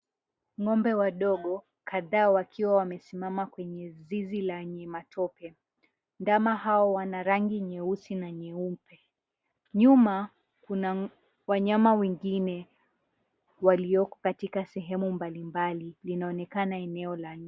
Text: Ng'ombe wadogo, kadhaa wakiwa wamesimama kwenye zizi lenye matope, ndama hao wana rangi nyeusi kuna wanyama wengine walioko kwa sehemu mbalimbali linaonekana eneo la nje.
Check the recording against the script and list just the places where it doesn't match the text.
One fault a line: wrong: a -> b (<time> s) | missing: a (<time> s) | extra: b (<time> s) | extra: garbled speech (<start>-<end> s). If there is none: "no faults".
extra: na nyeupe Nyuma (8.2 s)
wrong: kwa -> katika (14.2 s)